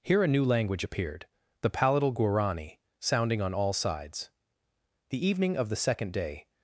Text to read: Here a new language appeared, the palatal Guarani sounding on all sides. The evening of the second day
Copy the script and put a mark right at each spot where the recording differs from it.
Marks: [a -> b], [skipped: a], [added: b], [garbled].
Here a new language appeared, the palatal Guarani sounding on all sides. The evening of the second day